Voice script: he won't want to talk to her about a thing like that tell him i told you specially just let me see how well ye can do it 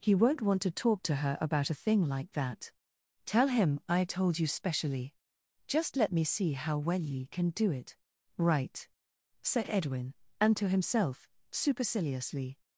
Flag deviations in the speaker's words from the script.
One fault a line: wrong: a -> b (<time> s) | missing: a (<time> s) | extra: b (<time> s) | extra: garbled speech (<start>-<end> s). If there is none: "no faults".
extra: right said edwin and to himself superciliously (8.4 s)